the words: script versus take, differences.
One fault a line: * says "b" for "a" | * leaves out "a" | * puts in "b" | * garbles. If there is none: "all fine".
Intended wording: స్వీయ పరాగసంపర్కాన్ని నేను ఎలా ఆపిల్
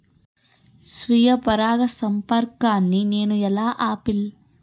all fine